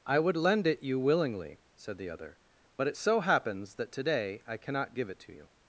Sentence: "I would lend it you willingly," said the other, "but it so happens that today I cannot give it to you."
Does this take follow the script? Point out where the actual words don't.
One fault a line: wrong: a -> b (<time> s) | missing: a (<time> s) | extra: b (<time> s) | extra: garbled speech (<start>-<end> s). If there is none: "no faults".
no faults